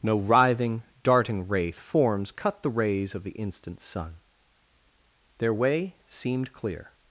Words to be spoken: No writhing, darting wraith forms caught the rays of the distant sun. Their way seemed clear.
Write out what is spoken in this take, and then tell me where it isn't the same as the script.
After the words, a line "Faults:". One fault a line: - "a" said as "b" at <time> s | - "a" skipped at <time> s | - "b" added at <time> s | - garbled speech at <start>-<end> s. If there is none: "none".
No writhing, darting wraith forms cut the rays of the instant sun. Their way seemed clear.
Faults:
- "caught" said as "cut" at 2.3 s
- "distant" said as "instant" at 3.3 s